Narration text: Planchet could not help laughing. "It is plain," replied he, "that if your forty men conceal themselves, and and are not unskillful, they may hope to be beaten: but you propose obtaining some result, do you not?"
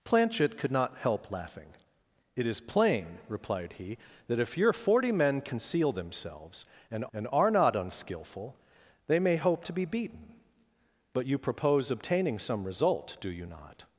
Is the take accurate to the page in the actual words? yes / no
yes